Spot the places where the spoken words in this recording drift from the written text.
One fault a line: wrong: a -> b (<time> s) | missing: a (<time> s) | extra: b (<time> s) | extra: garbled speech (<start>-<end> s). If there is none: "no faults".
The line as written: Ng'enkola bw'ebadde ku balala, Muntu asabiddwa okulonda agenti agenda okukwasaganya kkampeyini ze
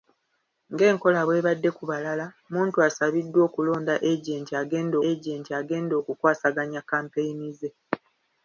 extra: agenti agenda (5.1 s)